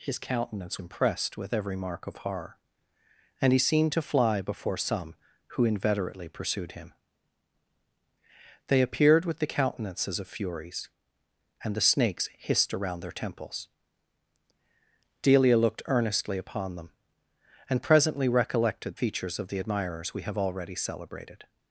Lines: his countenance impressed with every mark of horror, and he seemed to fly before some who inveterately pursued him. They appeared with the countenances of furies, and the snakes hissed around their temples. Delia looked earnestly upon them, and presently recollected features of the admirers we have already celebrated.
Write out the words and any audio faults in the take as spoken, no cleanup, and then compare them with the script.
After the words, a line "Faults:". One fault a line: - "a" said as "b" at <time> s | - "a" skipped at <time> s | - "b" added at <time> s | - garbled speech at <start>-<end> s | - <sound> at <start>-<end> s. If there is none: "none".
his countenance impressed with every mark of horror, and he seemed to fly before some who inveterately pursued him. They appeared with the countenances of furies, and the snakes hissed around their temples. Delia looked earnestly upon them, and presently recollected features of the admirers we have already celebrated.
Faults:
none